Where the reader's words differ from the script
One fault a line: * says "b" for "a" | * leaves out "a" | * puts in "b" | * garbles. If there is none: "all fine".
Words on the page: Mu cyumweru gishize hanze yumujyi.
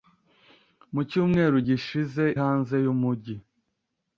all fine